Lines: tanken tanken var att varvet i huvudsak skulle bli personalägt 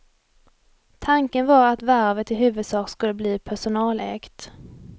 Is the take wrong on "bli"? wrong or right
right